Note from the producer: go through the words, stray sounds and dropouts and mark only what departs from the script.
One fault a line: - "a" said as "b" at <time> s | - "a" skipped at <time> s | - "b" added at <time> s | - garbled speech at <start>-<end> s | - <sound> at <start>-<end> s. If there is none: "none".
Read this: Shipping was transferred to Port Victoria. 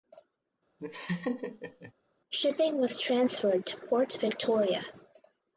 - laugh at 0.8-1.9 s